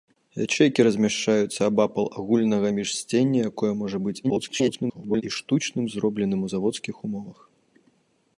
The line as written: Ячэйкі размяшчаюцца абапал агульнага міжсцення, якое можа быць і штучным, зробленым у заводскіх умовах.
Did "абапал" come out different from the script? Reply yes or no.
no